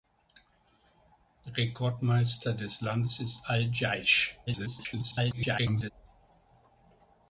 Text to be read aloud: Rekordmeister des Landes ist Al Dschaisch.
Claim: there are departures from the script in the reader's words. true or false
true